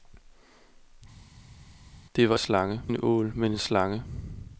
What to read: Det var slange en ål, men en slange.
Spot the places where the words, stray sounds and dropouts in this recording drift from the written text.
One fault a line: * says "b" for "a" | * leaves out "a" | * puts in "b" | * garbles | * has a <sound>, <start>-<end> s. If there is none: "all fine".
all fine